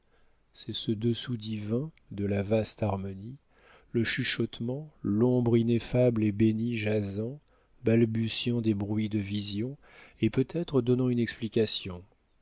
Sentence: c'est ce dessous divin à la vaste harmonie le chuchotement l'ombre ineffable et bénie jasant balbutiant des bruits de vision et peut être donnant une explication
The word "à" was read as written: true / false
false